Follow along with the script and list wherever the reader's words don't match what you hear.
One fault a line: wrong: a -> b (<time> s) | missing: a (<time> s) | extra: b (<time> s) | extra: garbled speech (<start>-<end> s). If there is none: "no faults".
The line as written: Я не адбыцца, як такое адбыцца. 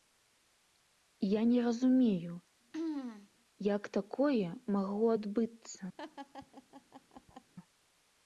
wrong: адбыцца -> разумею (1.7 s)
extra: магло (4.8 s)